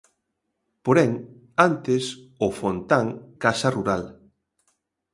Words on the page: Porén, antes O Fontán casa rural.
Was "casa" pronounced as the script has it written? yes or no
yes